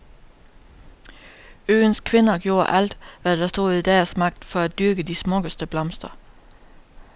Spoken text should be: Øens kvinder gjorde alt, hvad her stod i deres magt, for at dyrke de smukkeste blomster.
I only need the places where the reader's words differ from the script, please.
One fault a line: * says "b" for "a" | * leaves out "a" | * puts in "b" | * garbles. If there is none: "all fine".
* says "der" for "her"